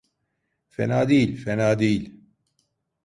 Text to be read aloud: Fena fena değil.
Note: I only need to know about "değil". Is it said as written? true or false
true